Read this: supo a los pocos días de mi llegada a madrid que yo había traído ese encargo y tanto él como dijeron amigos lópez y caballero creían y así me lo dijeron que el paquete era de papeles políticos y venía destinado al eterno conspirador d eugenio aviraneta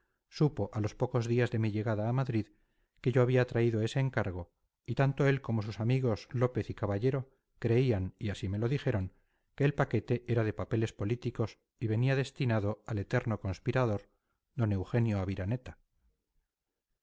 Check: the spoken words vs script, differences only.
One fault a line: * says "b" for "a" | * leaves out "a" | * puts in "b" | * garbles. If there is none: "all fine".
* says "sus" for "dijeron"